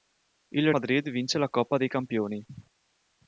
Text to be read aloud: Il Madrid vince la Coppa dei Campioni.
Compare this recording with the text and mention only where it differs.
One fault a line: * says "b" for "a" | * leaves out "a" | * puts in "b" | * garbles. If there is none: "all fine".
all fine